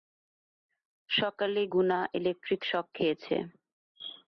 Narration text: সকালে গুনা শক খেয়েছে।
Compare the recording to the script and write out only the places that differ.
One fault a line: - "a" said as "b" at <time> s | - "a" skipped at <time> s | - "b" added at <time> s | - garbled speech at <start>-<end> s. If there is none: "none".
- "ইলেকট্রিক" added at 2.2 s